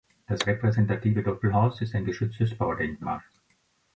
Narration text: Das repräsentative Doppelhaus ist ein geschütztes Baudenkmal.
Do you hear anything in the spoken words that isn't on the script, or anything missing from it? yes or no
no